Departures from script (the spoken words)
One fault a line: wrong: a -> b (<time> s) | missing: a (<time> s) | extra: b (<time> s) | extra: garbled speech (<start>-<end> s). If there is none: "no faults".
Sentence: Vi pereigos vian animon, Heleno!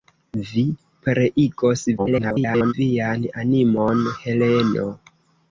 extra: garbled speech (2.0-2.7 s)